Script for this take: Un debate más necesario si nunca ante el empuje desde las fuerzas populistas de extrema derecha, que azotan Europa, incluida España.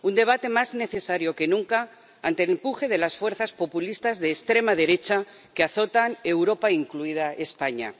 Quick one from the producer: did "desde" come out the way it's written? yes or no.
no